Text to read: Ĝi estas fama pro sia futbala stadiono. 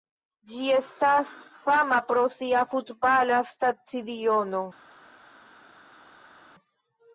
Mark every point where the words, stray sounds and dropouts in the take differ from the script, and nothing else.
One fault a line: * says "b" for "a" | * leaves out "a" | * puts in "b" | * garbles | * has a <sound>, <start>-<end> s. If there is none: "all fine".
all fine